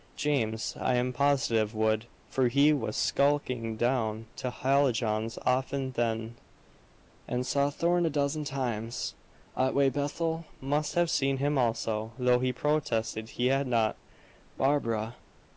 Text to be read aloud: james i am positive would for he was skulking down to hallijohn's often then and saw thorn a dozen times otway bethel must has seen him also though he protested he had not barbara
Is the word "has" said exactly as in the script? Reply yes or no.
no